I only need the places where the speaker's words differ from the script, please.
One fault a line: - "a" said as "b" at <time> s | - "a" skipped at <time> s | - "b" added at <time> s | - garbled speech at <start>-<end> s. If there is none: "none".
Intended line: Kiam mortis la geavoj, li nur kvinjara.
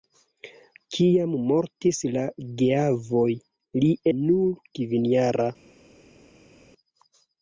none